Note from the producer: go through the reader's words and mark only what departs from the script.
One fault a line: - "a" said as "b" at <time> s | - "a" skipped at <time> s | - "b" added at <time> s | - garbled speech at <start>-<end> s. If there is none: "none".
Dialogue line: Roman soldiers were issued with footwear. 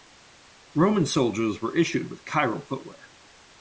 - "chiral" added at 2.2 s